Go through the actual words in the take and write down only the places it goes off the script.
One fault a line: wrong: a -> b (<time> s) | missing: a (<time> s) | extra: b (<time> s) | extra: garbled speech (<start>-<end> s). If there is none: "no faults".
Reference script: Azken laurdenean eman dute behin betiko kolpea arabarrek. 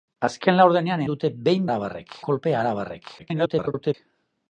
missing: eman (1.0 s)
wrong: betiko -> arabarrek (1.7 s)
extra: garbled speech (3.2-3.9 s)